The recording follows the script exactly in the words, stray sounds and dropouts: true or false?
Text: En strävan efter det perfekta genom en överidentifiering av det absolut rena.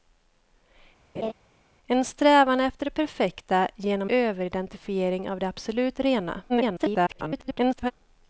false